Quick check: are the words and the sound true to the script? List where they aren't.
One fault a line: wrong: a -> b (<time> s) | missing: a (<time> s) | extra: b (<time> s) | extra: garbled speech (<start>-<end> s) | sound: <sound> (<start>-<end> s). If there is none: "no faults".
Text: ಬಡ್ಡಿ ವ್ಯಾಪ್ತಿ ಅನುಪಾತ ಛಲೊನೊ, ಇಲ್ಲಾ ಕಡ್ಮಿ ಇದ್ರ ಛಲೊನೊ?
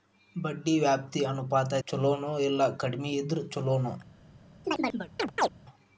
sound: chirp (4.6-5.5 s)